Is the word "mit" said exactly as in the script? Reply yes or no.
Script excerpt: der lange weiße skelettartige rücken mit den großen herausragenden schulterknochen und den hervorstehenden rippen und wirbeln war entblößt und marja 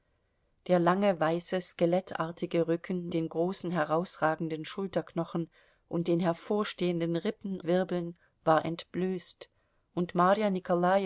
no